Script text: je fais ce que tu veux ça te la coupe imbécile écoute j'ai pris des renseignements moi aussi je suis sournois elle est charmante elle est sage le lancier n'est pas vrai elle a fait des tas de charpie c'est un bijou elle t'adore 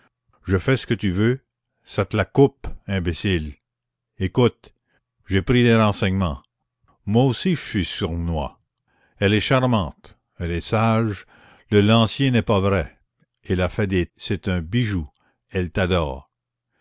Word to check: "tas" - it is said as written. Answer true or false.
false